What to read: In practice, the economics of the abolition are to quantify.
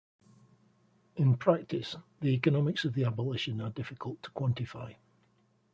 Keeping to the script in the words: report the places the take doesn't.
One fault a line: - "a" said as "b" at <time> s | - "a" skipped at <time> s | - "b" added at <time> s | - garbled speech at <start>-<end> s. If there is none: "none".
- "difficult" added at 3.7 s